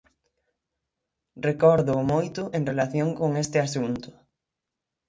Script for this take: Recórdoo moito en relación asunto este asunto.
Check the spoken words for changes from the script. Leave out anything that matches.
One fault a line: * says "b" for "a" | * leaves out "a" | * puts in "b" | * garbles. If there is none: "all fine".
* says "con" for "asunto"